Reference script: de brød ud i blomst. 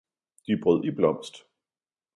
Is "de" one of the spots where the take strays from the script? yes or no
no